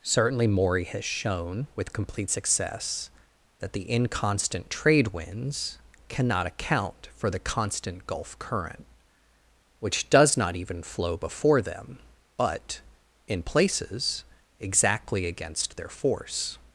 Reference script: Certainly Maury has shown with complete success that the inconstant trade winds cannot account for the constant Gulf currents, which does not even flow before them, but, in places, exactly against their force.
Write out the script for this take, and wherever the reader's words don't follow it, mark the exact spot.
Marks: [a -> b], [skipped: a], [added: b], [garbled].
Certainly Maury has shown with complete success that the inconstant trade winds cannot account for the constant Gulf [currents, -> current] which does not even flow before them, but, in places, exactly against their force.